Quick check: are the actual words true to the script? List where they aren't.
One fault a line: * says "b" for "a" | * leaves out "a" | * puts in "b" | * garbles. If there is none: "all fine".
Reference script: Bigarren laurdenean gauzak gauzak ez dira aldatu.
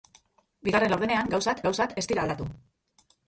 all fine